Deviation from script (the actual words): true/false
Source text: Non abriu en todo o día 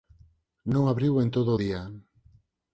false